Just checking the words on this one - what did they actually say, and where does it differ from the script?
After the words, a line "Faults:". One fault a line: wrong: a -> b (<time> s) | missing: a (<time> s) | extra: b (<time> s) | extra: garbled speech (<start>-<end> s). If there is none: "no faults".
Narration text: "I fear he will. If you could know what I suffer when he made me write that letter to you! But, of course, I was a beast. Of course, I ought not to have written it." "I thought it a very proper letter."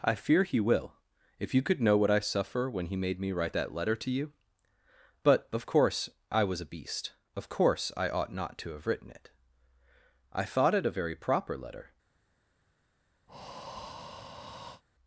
"I fear he will. If you could know what I suffer when he made me write that letter to you! But, of course, I was a beast. Of course, I ought not to have written it." "I thought it a very proper letter."
Faults:
no faults